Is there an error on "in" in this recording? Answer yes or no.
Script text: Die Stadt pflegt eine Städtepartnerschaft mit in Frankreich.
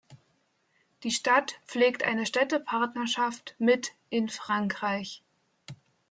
no